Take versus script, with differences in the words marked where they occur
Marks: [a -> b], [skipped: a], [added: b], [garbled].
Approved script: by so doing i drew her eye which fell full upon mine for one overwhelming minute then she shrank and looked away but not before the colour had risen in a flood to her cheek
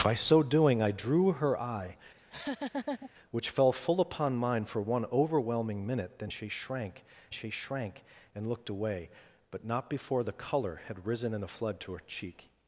by so doing i drew her eye which fell full upon mine for one overwhelming minute then she shrank [added: she shrank] and looked away but not before the colour had risen in a flood to her cheek